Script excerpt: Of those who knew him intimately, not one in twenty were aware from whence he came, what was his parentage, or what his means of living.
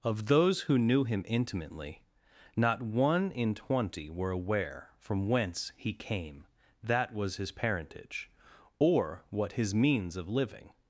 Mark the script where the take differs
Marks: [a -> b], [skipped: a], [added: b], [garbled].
Of those who knew him intimately, not one in twenty were aware from whence he came, [what -> that] was his parentage, or what his means of living.